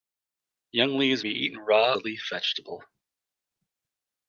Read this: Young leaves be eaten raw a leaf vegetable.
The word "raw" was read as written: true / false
true